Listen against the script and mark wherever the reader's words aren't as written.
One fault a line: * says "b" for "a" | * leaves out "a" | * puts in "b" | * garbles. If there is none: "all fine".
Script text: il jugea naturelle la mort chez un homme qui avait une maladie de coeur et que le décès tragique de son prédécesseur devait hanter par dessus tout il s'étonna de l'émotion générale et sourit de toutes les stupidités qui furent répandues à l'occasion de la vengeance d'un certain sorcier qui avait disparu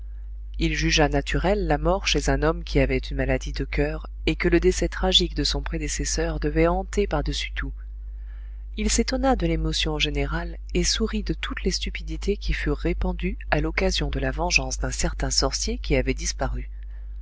all fine